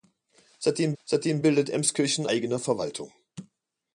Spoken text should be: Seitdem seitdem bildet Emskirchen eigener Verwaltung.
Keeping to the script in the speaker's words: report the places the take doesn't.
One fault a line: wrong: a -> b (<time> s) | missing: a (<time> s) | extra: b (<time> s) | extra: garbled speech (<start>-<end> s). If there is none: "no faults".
no faults